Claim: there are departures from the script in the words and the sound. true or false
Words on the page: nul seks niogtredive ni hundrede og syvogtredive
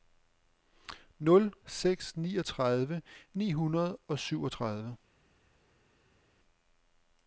false